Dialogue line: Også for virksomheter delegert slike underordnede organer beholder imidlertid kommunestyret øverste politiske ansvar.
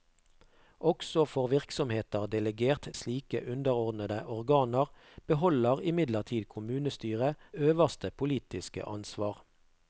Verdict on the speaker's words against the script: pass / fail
pass